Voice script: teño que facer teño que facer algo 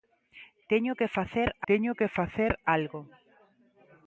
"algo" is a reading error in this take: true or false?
false